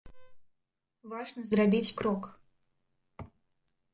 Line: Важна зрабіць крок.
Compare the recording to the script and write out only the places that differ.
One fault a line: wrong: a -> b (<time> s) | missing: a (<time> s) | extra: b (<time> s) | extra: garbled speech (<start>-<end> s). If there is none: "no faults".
no faults